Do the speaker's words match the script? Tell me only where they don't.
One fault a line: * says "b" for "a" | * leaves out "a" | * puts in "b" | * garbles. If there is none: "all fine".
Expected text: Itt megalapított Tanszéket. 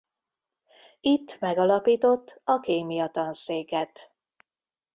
* puts in "a Kémia"